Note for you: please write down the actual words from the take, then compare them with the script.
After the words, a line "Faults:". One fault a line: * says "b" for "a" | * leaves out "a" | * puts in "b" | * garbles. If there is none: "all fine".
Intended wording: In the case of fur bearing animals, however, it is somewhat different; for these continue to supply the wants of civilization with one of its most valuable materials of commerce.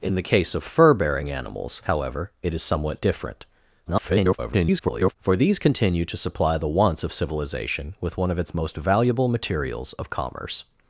In the case of fur bearing animals, however, it is somewhat different; [garbled] for these continue to supply the wants of civilization with one of its most valuable materials of commerce.
Faults:
* garbles